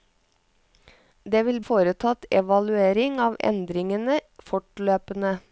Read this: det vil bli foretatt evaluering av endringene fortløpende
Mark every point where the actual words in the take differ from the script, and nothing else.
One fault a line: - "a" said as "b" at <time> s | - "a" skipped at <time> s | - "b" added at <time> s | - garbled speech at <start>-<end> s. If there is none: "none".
- "bli" skipped at 1.6 s